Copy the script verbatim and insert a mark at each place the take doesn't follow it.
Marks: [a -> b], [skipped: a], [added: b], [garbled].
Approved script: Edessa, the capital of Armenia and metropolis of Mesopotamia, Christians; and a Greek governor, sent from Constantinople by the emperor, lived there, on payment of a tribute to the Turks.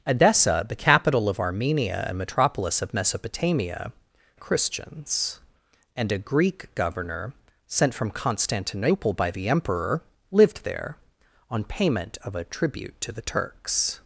Edessa, the capital of Armenia and metropolis of Mesopotamia, Christians; and a Greek governor, sent from Constantinople by the emperor, lived there, on payment of a tribute to the Turks.